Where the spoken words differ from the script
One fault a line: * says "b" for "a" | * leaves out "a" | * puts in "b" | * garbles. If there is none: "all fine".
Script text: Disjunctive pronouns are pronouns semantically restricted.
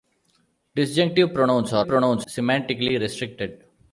all fine